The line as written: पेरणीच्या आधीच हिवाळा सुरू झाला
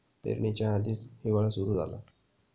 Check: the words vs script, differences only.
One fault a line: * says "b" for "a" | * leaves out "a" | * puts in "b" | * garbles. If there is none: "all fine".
all fine